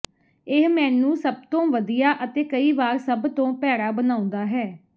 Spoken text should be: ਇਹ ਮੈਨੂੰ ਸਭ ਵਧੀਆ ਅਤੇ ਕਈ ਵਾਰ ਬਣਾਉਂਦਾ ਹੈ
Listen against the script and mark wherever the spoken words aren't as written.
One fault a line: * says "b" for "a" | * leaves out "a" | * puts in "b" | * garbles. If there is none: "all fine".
* puts in "ਤੋਂ"
* puts in "ਸਭ ਤੋਂ ਭੈੜਾ"